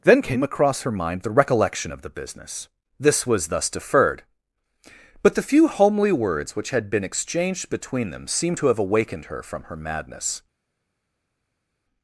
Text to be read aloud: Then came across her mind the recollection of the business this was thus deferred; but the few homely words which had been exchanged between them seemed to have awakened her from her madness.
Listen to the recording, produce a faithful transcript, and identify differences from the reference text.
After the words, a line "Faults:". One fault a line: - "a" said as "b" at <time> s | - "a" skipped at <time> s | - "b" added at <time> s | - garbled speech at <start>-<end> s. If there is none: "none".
Then came across her mind the recollection of the business this was thus deferred; but the few homely words which had been exchanged between them seemed to have awakened her from her madness.
Faults:
none